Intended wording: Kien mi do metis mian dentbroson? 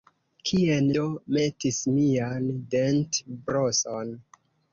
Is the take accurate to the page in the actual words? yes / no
no